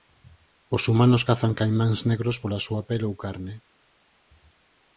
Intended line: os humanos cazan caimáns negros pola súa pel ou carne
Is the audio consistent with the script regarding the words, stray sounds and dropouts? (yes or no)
yes